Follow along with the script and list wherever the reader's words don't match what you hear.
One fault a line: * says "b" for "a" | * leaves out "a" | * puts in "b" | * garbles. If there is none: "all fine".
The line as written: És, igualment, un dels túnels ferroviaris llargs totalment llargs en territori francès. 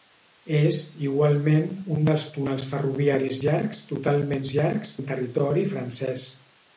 all fine